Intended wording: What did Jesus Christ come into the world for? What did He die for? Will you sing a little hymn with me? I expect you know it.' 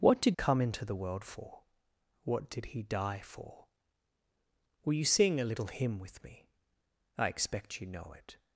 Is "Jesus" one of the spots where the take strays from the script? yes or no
yes